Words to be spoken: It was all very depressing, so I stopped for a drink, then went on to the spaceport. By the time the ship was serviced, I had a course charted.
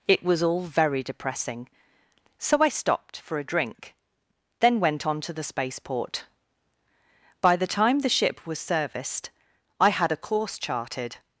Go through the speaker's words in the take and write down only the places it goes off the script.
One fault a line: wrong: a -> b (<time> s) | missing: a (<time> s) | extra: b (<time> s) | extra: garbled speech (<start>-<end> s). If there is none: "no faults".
no faults